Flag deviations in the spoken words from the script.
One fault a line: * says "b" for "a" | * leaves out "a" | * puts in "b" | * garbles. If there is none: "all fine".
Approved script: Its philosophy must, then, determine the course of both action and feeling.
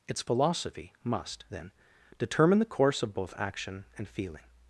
all fine